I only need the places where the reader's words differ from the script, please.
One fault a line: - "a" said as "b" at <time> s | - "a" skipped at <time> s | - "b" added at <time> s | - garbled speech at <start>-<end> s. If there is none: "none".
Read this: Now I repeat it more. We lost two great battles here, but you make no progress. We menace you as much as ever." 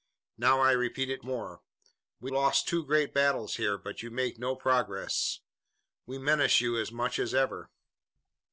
none